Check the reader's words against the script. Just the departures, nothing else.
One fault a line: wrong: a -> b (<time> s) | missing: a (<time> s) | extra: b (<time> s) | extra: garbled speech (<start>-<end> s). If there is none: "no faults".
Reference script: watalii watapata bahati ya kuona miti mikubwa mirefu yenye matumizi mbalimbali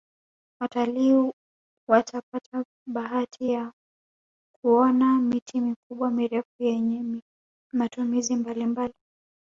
no faults